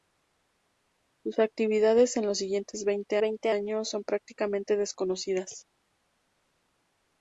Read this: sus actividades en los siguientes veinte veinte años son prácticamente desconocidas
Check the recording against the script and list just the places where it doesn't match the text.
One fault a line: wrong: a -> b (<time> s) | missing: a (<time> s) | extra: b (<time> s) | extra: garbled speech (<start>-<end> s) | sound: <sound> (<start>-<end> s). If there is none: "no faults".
no faults